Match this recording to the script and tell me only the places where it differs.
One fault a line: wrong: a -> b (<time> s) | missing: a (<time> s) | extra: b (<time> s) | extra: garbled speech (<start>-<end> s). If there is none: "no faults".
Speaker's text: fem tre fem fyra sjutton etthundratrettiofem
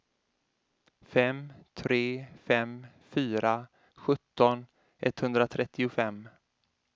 no faults